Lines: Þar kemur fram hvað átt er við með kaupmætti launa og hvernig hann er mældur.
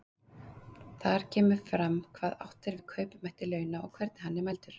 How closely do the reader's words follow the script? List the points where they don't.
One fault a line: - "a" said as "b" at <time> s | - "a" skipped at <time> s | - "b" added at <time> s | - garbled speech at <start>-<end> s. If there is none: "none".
- "við" skipped at 2.8 s